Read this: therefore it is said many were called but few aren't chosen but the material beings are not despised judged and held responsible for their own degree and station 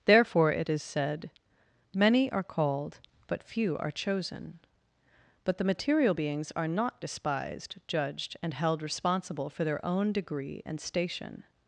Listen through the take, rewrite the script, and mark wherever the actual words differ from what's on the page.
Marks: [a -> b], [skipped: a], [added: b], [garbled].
therefore it is said many [were -> are] called but few [aren't -> are] chosen but the material beings are not despised judged and held responsible for their own degree and station